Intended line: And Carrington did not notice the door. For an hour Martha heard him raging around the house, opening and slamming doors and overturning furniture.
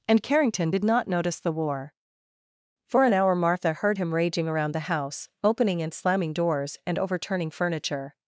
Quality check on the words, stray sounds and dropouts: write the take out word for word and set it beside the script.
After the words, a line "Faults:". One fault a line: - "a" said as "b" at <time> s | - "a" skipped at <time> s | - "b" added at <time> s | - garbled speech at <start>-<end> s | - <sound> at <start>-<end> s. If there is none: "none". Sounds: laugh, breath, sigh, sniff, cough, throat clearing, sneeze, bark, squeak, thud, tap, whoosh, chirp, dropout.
And Carrington did not notice the war. For an hour Martha heard him raging around the house, opening and slamming doors and overturning furniture.
Faults:
- "door" said as "war" at 1.5 s